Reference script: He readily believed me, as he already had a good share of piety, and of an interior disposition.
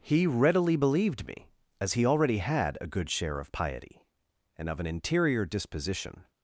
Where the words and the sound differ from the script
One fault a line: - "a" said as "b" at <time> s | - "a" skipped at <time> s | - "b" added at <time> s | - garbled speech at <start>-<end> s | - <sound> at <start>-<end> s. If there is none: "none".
none